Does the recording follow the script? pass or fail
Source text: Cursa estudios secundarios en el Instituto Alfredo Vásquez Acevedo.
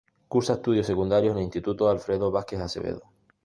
pass